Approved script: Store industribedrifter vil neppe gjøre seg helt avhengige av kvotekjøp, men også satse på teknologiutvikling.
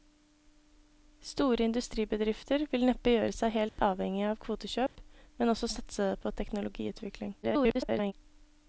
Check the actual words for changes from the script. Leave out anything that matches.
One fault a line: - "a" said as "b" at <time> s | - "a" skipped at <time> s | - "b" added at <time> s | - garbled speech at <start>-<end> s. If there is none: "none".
- garbled speech at 7.4-8.1 s